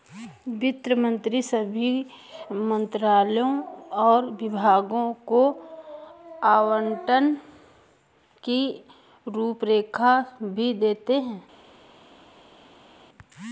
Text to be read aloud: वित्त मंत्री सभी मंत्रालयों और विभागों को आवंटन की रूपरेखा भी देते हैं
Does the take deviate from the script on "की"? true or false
false